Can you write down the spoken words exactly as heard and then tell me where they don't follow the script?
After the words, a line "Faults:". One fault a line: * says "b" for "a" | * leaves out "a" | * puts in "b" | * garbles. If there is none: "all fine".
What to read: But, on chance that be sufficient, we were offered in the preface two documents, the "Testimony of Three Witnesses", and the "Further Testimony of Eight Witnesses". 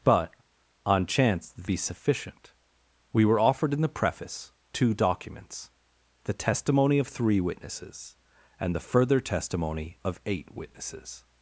But, on chance that be sufficient, we were offered in the preface two documents, the "Testimony of Three Witnesses", and the "Further Testimony of Eight Witnesses".
Faults:
all fine